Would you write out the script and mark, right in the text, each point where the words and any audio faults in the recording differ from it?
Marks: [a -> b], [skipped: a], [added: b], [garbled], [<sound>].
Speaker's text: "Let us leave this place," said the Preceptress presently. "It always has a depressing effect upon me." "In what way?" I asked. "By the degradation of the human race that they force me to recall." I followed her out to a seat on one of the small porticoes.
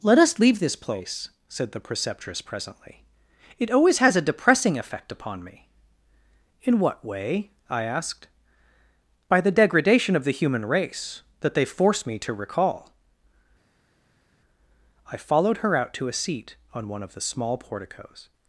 "Let us leave this place," said the Preceptress presently. "It always has a depressing effect upon me." "In what way?" I asked. "By the degradation of the human race that they force me to recall." I followed her out to a seat on one of the small porticoes.